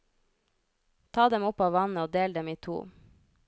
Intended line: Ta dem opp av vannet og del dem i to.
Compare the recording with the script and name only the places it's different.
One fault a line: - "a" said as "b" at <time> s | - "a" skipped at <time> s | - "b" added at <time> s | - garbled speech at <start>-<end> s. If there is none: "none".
none